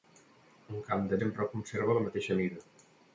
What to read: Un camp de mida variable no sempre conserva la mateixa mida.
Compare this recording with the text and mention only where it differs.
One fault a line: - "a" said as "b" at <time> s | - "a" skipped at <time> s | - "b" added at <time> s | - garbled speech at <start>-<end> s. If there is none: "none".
- "mida variable no" skipped at 1.2 s